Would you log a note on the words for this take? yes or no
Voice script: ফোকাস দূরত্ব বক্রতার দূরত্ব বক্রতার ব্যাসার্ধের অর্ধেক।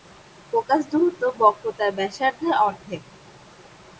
yes